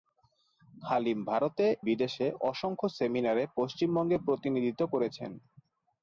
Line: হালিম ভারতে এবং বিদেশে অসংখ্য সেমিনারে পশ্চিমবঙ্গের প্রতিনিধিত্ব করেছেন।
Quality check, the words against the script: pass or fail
fail